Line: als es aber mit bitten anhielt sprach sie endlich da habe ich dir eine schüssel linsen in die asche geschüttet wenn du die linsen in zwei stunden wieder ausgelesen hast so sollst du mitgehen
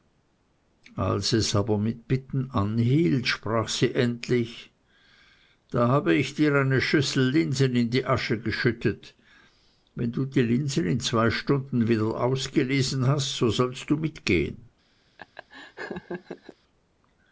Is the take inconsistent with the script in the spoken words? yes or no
no